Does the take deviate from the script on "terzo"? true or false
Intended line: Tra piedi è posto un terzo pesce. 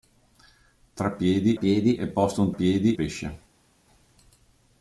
true